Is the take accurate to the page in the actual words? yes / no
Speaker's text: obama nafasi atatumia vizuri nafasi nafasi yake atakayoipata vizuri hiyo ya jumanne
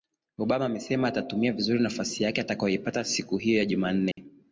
no